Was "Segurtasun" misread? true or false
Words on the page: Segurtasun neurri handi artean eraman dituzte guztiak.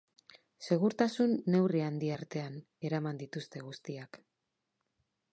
false